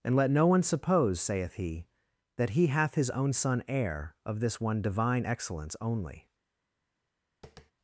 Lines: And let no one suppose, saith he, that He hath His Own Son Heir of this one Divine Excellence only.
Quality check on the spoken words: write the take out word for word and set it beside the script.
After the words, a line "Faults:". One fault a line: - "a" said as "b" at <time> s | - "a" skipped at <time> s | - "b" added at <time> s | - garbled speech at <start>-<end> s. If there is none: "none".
And let no one suppose, saith he, that He hath His Own Son Heir of this one Divine Excellence only.
Faults:
none